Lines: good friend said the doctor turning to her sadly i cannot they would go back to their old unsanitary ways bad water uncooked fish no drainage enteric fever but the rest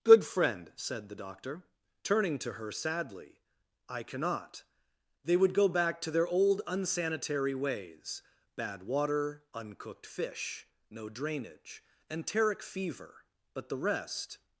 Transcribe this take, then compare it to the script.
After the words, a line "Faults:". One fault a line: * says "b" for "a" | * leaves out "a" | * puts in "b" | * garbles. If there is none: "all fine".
good friend said the doctor turning to her sadly i cannot they would go back to their old unsanitary ways bad water uncooked fish no drainage enteric fever but the rest
Faults:
all fine